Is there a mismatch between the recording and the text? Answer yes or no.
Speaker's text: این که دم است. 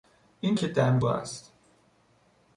no